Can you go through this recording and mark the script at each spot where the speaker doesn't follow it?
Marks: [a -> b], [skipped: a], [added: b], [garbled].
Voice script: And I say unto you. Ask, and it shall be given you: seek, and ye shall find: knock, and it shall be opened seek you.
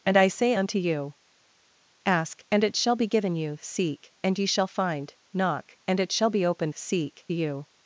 And I say unto you. Ask, and it shall be given you: seek, and ye shall find: knock, and it shall be opened seek you.